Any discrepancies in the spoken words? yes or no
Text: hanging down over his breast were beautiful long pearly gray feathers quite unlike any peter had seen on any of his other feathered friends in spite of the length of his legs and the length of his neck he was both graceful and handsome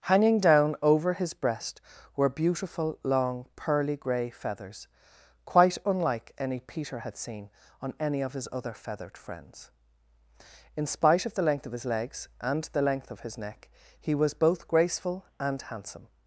no